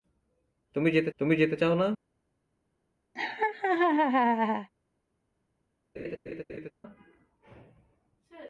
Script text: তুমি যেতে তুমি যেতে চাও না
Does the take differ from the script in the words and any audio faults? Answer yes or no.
yes